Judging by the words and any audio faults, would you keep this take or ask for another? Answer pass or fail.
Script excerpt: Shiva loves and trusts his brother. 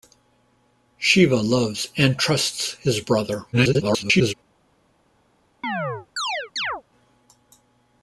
fail